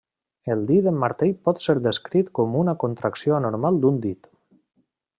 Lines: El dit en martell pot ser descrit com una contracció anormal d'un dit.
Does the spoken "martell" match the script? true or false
true